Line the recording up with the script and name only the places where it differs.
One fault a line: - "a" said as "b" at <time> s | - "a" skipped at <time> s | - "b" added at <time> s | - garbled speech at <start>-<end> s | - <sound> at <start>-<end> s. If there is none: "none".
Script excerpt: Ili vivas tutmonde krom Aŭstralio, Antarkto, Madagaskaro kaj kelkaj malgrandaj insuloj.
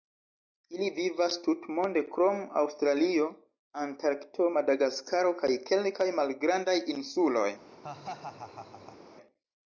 - laugh at 7.7-9.0 s